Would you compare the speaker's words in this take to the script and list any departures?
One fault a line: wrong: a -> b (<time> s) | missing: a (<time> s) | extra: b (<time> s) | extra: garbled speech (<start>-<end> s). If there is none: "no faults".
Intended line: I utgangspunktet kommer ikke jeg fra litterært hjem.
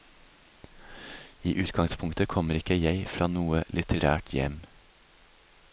extra: noe (3.3 s)